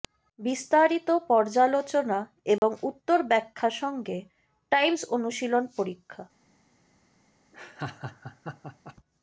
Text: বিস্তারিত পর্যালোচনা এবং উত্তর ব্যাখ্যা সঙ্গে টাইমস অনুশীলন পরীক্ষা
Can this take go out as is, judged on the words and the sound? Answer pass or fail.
fail